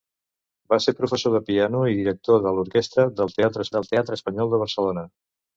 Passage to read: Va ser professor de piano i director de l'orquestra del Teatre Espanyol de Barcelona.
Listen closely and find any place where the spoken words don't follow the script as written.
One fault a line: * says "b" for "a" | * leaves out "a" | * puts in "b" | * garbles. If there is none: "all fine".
* puts in "del Teatre"